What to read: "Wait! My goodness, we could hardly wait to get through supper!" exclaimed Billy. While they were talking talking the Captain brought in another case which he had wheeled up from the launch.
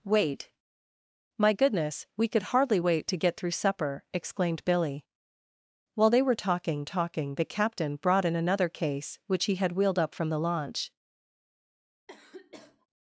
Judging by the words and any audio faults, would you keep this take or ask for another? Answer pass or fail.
fail